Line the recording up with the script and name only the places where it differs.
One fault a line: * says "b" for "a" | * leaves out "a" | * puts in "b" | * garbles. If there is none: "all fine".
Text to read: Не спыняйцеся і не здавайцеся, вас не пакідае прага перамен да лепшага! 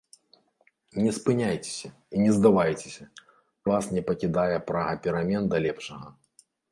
all fine